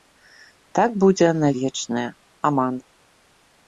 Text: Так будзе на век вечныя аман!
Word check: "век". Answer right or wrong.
wrong